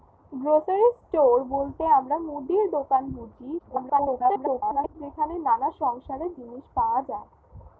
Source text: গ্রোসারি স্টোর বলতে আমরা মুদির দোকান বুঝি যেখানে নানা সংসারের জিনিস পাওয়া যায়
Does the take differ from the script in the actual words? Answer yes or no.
yes